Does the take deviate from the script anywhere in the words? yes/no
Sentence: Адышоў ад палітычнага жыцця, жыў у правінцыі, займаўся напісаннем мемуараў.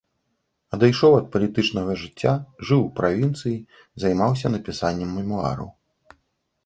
no